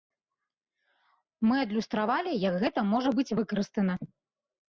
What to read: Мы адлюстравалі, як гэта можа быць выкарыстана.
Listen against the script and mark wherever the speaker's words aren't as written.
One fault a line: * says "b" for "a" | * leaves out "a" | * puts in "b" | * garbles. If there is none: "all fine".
all fine